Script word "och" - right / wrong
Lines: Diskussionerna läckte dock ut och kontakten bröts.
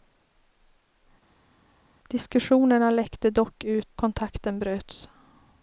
wrong